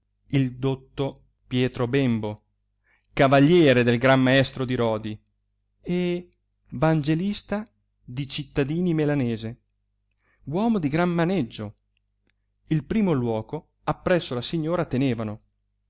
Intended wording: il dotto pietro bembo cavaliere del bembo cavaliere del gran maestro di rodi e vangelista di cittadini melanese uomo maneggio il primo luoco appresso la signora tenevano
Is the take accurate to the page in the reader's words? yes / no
no